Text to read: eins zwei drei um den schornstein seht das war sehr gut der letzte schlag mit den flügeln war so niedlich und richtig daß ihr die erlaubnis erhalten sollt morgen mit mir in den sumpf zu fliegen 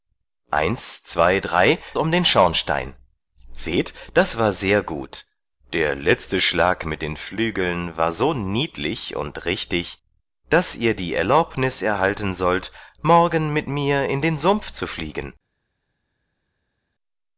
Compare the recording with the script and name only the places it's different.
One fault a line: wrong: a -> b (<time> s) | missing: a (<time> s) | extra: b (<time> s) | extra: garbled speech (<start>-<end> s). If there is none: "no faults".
no faults